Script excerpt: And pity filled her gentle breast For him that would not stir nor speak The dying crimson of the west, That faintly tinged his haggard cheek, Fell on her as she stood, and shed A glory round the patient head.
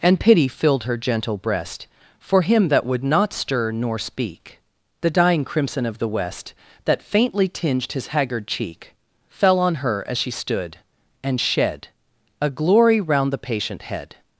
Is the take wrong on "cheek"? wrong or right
right